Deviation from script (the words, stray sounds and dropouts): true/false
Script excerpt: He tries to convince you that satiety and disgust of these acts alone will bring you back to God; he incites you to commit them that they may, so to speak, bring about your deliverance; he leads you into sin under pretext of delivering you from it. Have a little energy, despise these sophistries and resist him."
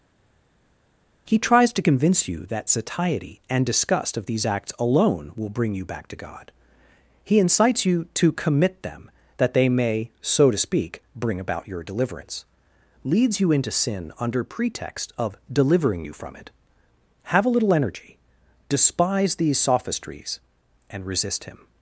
true